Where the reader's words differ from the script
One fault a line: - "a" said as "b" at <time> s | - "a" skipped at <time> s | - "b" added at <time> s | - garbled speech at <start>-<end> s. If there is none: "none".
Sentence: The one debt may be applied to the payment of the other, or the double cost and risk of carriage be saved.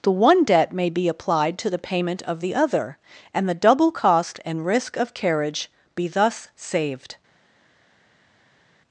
- "or" said as "and" at 3.3 s
- "thus" added at 6.1 s